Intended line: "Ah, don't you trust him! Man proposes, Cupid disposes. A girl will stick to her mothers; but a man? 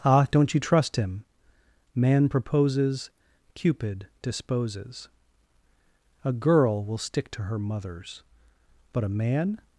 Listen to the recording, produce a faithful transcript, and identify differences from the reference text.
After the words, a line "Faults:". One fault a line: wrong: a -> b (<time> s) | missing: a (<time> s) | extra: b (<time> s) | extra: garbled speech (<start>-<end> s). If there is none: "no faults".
"Ah, don't you trust him! Man proposes, Cupid disposes. A girl will stick to her mothers; but a man?
Faults:
no faults